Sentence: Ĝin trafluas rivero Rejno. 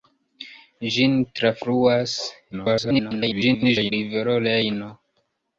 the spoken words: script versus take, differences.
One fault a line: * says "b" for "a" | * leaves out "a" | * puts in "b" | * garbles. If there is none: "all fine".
* garbles